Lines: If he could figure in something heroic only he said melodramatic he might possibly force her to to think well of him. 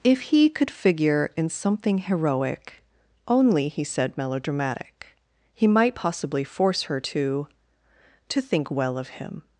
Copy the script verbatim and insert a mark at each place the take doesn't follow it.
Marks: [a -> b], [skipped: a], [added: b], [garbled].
If he could figure in something heroic only he said melodramatic he might possibly force her to to think well of him.